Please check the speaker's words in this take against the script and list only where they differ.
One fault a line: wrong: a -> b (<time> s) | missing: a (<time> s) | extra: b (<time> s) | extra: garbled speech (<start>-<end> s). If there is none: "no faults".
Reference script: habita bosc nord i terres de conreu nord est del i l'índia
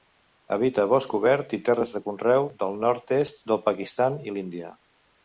wrong: nord -> obert (1.2 s)
extra: del (2.6 s)
extra: pakistan (3.7 s)